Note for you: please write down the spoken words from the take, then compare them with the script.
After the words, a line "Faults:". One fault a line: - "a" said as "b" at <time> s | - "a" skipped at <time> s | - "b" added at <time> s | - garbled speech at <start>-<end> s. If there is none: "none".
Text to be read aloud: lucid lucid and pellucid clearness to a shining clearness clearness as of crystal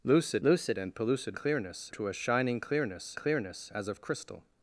lucid lucid and pellucid clearness to a shining clearness clearness as of crystal
Faults:
none